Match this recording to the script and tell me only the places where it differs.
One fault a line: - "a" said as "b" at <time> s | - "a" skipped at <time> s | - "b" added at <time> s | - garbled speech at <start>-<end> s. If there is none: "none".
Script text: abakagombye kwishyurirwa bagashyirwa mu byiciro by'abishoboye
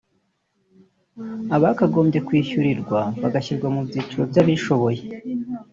none